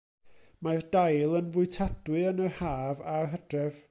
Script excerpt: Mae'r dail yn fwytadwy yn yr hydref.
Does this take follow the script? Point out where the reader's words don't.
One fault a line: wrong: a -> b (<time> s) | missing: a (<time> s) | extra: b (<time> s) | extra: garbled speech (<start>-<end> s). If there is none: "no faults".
extra: haf a'r (2.6 s)